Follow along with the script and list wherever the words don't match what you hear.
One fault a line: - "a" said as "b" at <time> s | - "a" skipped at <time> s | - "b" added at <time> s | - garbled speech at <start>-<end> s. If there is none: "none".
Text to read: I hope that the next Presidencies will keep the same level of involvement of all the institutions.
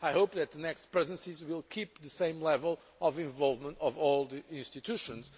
none